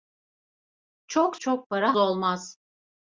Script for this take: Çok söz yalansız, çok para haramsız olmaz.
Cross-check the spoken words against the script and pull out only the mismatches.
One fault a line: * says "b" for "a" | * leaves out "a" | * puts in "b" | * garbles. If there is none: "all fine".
* leaves out "söz yalansız"
* leaves out "haramsız"